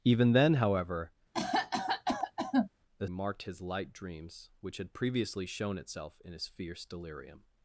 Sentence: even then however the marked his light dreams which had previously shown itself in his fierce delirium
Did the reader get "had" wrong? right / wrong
right